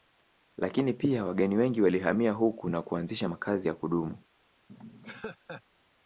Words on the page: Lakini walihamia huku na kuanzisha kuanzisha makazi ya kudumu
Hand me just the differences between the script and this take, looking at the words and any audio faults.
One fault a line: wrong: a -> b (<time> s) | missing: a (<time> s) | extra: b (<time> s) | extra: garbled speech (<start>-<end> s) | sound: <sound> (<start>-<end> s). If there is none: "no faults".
extra: pia wageni wengi (0.9 s)
missing: kuanzisha (3.3 s)
sound: laugh (4.7-5.6 s)